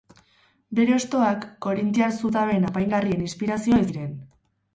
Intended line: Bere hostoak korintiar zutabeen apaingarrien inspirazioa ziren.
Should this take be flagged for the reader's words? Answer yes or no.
no